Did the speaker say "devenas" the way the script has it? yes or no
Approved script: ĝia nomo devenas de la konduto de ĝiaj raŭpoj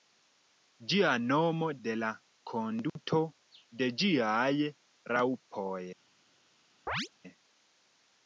no